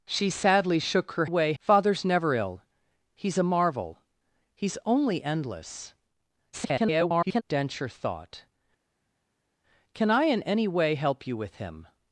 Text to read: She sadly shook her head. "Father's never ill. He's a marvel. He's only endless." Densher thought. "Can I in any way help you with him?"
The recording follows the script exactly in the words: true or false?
false